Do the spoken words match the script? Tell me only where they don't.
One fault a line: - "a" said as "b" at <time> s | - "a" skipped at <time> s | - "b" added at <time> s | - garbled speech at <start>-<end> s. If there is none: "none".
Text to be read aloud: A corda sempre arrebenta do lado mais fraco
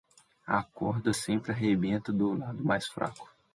none